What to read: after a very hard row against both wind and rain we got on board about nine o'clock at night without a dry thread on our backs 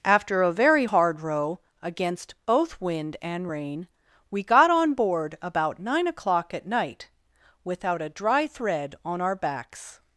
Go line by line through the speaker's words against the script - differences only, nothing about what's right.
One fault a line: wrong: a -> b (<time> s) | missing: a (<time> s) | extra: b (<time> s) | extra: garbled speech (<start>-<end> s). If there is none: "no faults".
no faults